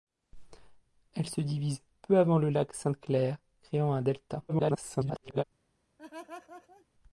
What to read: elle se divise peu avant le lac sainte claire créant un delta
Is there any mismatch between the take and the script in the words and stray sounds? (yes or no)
yes